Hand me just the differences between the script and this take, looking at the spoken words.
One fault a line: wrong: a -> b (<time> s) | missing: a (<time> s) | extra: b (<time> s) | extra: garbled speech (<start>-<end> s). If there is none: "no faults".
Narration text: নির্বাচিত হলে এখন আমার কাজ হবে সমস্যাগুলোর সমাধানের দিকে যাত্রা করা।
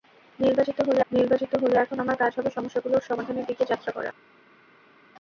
extra: নির্বাচিত হলে (1.1 s)